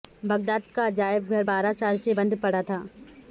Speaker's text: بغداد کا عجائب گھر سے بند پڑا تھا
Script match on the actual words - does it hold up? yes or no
no